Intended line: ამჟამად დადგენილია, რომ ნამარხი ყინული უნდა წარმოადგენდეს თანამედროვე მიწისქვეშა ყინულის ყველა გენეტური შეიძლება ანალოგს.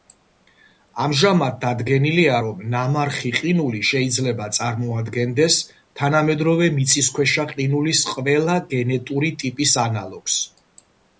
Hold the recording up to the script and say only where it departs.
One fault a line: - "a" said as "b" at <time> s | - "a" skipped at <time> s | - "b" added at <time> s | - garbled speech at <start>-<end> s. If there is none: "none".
- "უნდა" said as "შეიძლება" at 3.9 s
- "შეიძლება" said as "ტიპის" at 9.4 s